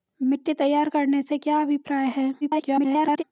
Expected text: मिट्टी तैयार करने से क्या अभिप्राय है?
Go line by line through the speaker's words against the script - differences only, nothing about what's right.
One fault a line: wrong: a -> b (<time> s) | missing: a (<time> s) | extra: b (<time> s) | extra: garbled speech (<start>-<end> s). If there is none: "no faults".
extra: garbled speech (2.4-3.2 s)